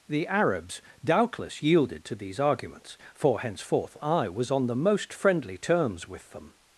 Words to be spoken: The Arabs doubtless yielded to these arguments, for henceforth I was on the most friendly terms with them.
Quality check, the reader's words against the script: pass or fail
pass